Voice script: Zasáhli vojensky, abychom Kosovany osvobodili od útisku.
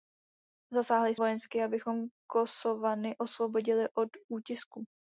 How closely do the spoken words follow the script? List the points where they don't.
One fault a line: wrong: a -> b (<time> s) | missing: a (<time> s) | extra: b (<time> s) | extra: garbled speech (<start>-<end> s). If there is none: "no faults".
no faults